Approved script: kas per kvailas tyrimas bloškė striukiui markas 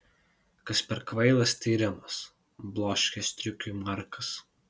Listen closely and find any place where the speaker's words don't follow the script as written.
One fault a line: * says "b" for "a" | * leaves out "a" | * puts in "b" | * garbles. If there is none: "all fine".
all fine